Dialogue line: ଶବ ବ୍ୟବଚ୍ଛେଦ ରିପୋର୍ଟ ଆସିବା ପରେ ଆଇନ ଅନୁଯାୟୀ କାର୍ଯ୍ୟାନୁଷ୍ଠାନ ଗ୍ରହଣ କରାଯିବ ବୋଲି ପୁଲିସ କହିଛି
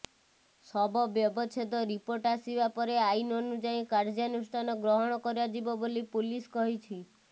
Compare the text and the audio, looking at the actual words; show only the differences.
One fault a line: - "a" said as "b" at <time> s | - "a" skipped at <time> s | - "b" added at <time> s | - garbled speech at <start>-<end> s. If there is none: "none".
none